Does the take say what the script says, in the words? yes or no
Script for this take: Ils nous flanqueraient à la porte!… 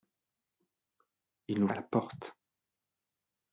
no